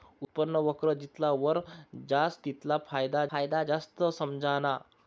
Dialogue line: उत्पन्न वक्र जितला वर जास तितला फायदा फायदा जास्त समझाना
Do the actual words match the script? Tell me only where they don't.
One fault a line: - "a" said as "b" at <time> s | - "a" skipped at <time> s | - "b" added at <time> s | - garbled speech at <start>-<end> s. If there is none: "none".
none